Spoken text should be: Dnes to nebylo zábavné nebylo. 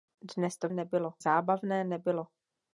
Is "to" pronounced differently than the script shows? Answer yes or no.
no